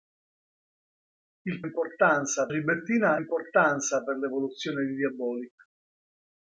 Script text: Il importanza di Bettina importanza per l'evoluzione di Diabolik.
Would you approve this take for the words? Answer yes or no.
yes